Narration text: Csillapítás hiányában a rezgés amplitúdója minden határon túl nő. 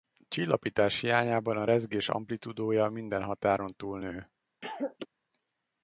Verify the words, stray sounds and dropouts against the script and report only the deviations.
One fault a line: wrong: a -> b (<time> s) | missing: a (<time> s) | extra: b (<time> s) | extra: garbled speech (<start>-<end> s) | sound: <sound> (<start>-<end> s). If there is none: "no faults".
sound: cough (4.6-5.1 s)